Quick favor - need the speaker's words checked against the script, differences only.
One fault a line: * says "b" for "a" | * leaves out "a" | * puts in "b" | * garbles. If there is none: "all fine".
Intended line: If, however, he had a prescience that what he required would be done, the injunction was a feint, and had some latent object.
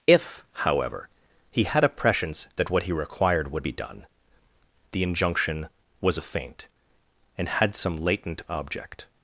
all fine